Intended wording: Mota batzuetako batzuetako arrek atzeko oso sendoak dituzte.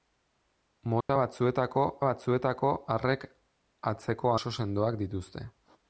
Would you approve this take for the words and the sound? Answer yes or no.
no